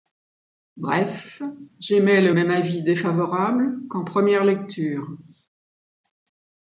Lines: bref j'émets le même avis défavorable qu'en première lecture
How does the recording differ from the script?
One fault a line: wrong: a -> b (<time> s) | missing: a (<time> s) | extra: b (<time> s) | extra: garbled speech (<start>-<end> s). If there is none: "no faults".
no faults